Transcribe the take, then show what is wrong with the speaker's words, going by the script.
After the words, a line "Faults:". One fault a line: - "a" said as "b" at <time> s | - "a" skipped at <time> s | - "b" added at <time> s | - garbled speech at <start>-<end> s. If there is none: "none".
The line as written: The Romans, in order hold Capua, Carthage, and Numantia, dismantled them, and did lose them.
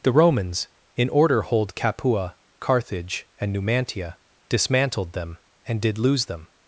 The Romans, in order hold Capua, Carthage, and Numantia, dismantled them, and did lose them.
Faults:
none